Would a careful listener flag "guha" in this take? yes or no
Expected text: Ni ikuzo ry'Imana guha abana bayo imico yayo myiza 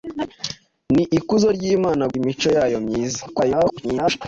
yes